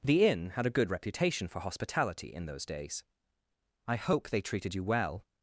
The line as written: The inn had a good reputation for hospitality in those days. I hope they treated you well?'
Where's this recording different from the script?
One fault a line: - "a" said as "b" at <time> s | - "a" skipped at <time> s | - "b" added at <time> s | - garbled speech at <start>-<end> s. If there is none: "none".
none